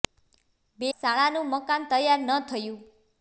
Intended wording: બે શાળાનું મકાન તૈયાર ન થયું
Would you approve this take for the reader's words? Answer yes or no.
yes